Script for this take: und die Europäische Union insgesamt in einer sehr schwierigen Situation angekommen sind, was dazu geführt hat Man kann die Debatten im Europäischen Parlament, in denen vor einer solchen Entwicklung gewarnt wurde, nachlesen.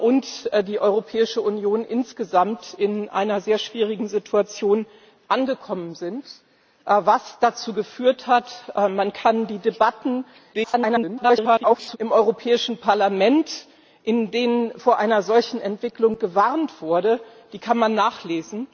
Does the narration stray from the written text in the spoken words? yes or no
yes